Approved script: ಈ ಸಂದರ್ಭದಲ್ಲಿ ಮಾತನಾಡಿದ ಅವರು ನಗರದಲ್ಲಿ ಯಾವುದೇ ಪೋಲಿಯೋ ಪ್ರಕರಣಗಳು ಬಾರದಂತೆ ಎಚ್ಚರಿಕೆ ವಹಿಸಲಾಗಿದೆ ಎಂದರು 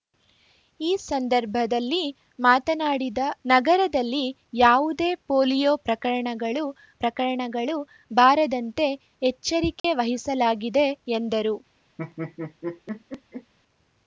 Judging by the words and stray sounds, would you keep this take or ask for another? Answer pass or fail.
fail